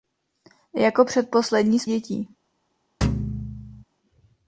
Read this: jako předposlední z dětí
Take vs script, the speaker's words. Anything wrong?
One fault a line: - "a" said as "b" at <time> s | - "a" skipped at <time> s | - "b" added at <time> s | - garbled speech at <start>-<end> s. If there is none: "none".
none